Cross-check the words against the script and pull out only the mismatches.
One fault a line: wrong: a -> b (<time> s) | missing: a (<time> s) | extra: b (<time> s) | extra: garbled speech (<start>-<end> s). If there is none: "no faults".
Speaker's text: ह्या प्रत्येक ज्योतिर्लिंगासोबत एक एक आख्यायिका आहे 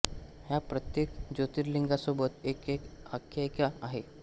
no faults